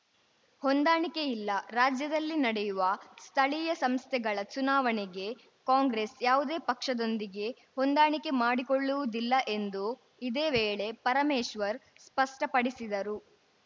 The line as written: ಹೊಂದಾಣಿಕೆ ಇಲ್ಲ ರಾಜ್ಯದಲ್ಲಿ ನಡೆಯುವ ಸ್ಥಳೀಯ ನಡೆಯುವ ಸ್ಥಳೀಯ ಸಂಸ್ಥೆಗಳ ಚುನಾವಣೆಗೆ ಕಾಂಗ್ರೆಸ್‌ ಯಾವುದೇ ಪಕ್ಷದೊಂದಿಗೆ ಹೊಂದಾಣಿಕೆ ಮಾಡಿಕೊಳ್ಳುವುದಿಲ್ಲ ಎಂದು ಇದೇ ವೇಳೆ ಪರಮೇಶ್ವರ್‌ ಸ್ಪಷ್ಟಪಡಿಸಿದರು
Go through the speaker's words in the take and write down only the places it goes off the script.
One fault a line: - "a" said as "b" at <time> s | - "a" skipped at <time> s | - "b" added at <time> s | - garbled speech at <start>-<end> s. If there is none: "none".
- "ನಡೆಯುವ ಸ್ಥಳೀಯ" skipped at 3.7 s